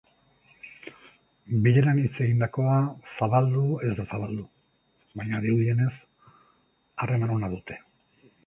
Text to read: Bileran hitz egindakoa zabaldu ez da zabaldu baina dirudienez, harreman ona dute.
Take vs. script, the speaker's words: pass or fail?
pass